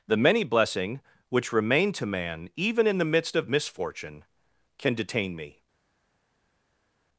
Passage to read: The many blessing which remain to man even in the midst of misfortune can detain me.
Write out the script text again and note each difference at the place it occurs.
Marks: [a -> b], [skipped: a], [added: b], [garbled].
The many blessing which remain to man even in the midst of misfortune can detain me.